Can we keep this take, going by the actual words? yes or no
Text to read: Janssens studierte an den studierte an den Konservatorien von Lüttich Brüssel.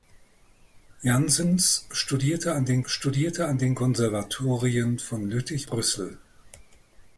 yes